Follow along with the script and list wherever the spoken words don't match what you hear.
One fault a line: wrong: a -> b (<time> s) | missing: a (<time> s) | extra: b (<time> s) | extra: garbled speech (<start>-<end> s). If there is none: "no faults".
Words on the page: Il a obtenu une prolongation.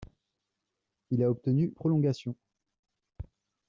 missing: une (1.7 s)